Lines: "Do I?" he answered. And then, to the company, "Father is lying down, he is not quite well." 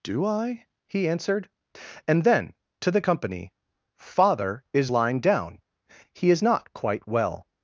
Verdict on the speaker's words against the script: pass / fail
pass